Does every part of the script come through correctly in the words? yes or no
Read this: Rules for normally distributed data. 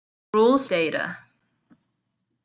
no